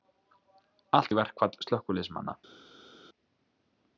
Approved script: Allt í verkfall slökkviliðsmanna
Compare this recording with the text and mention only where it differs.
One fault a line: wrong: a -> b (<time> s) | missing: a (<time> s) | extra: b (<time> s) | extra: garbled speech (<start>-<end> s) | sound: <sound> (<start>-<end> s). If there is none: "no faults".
no faults